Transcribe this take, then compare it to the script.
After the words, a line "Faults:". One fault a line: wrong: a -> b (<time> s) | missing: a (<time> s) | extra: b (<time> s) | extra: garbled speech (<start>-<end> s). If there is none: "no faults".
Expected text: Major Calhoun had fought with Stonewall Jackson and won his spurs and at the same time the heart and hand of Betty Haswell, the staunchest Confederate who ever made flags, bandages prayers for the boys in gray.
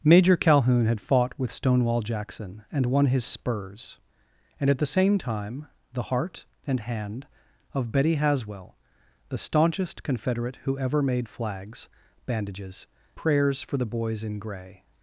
Major Calhoun had fought with Stonewall Jackson and won his spurs and at the same time the heart and hand of Betty Haswell, the staunchest Confederate who ever made flags, bandages prayers for the boys in gray.
Faults:
no faults